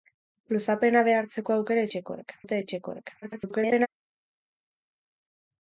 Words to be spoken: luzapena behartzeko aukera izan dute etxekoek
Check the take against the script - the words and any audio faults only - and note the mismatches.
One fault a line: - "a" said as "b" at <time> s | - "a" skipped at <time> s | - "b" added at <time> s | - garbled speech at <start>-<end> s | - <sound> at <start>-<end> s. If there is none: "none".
- "izan" said as "etxekoek" at 1.9 s
- garbled speech at 3.2-3.9 s